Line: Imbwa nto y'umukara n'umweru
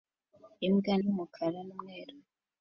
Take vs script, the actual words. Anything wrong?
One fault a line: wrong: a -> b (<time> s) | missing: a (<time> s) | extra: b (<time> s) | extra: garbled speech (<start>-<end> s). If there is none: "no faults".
missing: nto (0.9 s)